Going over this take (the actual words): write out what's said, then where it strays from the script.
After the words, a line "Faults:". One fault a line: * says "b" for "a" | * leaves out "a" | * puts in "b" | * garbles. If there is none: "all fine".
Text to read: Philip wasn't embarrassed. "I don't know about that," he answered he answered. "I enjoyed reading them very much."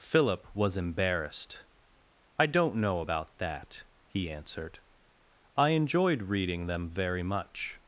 Philip was embarrassed. "I don't know about that," he answered. "I enjoyed reading them very much."
Faults:
* says "was" for "wasn't"
* leaves out "he answered"